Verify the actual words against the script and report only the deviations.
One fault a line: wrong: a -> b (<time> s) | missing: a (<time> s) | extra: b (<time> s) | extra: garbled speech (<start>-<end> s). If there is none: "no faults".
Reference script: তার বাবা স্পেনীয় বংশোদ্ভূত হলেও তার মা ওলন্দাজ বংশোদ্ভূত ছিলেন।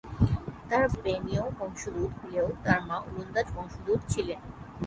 missing: বাবা (0.8 s)